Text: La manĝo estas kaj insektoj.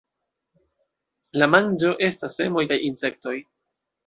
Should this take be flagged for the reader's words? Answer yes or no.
yes